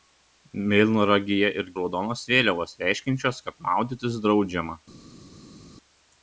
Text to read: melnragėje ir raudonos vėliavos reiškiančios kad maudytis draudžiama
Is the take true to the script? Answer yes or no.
yes